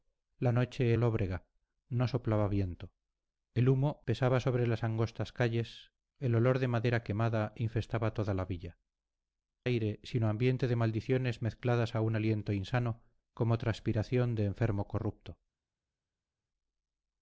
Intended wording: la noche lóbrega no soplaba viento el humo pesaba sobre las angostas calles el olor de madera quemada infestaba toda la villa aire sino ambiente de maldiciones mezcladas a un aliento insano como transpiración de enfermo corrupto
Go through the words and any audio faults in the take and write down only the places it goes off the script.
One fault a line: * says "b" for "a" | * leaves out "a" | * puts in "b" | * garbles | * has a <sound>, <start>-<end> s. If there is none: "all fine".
all fine